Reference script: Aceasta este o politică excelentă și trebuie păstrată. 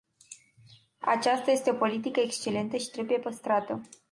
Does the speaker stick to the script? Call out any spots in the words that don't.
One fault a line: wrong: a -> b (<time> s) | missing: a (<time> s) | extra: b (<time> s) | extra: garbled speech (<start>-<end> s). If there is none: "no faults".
no faults